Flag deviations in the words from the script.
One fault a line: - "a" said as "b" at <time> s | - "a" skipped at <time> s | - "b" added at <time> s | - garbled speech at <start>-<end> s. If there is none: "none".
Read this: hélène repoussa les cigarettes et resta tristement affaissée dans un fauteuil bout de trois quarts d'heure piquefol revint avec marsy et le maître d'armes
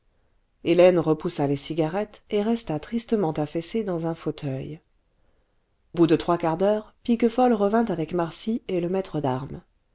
none